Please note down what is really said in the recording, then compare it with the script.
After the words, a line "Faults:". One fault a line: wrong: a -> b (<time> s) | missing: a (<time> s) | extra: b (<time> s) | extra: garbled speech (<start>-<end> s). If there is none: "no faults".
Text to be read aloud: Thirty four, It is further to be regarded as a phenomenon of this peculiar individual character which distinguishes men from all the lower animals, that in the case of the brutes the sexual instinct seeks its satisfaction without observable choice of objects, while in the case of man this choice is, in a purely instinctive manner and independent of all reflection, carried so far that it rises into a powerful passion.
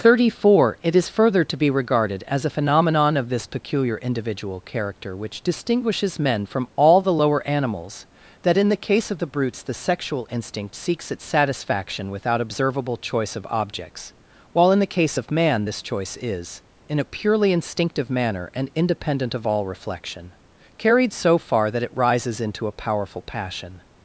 Thirty four, It is further to be regarded as a phenomenon of this peculiar individual character which distinguishes men from all the lower animals, that in the case of the brutes the sexual instinct seeks its satisfaction without observable choice of objects, while in the case of man this choice is, in a purely instinctive manner and independent of all reflection, carried so far that it rises into a powerful passion.
Faults:
no faults